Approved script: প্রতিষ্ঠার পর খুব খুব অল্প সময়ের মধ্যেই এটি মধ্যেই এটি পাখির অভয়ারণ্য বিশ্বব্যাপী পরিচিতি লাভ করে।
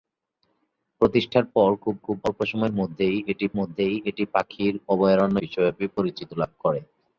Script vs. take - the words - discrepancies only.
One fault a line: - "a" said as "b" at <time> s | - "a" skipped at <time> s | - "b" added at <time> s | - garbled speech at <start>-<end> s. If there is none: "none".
none